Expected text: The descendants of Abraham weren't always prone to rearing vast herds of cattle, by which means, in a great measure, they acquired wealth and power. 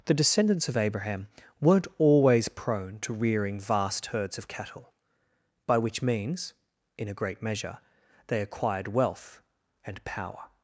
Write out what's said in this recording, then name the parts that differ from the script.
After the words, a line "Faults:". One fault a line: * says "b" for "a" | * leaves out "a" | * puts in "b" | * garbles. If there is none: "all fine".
The descendants of Abraham weren't always prone to rearing vast herds of cattle, by which means, in a great measure, they acquired wealth and power.
Faults:
all fine